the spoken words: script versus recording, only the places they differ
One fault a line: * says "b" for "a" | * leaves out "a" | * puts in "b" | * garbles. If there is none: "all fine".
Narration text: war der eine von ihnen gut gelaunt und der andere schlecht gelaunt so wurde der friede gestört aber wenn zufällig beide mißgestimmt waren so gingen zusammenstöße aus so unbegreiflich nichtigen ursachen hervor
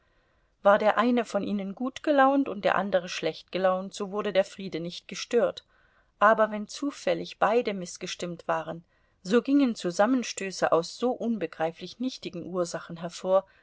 * puts in "nicht"